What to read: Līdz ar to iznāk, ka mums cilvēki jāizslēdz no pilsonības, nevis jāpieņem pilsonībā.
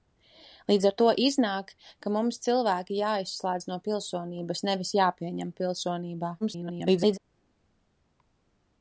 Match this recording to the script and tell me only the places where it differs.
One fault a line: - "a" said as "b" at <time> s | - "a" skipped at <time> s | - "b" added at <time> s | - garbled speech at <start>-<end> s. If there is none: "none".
- garbled speech at 6.4-7.2 s